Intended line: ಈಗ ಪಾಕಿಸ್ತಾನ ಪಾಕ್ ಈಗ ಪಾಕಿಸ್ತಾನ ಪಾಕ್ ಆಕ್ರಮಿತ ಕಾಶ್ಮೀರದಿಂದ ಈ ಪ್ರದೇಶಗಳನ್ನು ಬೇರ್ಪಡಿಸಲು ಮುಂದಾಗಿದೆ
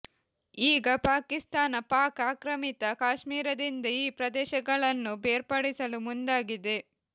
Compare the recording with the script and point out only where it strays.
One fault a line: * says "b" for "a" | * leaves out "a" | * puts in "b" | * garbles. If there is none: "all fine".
* leaves out "ಈಗ ಪಾಕಿಸ್ತಾನ ಪಾಕ್"